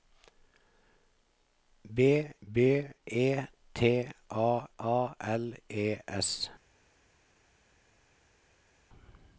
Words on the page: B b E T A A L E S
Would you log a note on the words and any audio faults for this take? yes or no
no